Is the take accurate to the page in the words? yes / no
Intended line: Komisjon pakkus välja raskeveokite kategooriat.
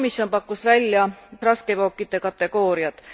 yes